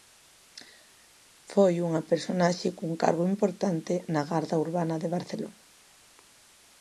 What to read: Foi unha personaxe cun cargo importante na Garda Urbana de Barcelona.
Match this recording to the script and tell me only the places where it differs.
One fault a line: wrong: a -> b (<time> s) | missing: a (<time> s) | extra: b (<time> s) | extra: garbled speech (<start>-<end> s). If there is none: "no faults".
no faults